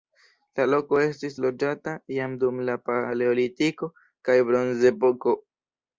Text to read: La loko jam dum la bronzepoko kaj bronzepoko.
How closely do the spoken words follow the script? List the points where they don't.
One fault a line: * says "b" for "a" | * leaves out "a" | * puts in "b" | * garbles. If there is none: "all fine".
* puts in "estis loĝata"
* says "paleolitiko" for "bronzepoko"